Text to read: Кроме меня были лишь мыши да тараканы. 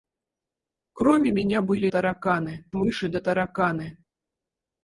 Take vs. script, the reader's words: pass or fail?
fail